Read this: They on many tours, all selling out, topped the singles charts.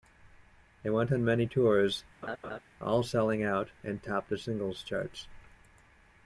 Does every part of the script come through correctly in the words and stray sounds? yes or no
no